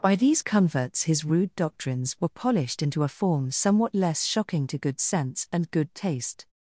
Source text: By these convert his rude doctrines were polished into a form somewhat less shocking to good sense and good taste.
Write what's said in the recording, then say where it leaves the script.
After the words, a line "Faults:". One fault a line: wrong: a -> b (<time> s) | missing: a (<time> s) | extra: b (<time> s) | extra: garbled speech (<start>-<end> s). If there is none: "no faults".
By these converts his rude doctrines were polished into a form somewhat less shocking to good sense and good taste.
Faults:
wrong: convert -> converts (0.4 s)